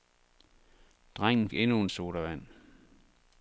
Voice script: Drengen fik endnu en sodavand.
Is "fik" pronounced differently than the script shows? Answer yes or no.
yes